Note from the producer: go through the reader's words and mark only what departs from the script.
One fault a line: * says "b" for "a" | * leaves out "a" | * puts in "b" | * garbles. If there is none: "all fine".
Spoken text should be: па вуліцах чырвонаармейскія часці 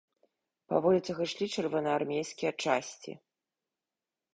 * puts in "ішлі"